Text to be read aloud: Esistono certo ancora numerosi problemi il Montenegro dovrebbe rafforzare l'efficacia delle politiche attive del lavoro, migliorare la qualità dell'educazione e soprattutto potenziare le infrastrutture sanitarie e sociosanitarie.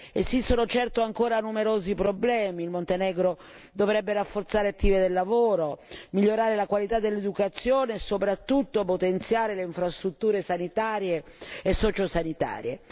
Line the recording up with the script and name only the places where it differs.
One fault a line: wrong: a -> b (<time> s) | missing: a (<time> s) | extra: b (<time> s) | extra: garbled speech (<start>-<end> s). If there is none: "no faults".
missing: l'efficacia delle politiche (4.7 s)